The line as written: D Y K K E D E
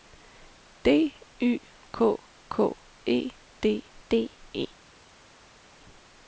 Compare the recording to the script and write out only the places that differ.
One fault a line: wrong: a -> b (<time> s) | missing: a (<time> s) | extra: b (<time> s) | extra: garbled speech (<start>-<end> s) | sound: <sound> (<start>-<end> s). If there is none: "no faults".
extra: D (4.1 s)